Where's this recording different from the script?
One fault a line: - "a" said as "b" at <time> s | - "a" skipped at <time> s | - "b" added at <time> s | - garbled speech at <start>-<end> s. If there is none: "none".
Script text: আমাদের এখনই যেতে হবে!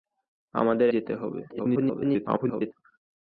- "এখনই" skipped at 0.9 s
- garbled speech at 1.5-2.7 s